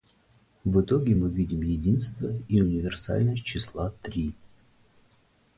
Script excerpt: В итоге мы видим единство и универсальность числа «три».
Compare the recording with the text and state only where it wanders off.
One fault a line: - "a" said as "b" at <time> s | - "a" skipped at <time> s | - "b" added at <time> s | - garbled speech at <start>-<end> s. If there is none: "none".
none